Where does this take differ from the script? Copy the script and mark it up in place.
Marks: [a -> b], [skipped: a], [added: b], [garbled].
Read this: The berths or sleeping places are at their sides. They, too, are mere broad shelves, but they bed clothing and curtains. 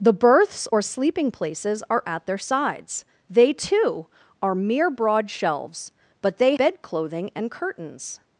The berths or sleeping places are at their sides. They, too, are mere broad shelves, but they bed clothing and curtains.